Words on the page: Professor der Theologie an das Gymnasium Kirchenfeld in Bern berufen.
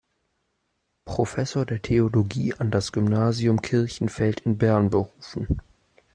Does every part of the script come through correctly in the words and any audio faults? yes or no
yes